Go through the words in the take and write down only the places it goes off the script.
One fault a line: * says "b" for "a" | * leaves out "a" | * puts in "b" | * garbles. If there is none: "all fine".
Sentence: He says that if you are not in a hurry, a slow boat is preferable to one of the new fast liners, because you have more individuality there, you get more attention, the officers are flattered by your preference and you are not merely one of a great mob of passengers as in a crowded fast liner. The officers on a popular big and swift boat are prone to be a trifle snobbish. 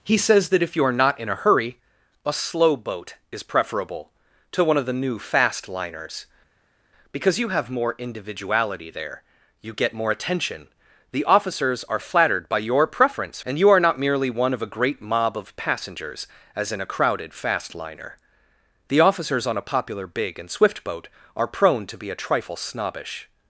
all fine